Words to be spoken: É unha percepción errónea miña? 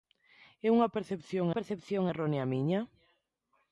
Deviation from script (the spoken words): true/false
true